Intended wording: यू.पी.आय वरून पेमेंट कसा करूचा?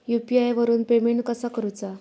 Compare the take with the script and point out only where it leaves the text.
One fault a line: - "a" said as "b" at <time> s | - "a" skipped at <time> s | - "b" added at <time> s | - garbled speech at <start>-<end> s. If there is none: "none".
none